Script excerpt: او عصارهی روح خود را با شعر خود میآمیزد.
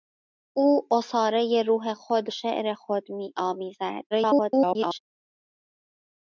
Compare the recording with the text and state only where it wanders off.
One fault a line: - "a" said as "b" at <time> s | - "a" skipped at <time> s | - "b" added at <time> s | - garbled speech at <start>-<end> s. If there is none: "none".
- "را با" skipped at 2.3 s
- garbled speech at 4.1-5.0 s